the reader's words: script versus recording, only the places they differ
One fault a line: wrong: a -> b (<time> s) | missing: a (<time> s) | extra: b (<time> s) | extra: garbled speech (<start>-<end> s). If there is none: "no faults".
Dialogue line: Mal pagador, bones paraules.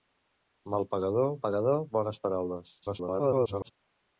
extra: pagador (1.5 s)
extra: garbled speech (2.8-3.7 s)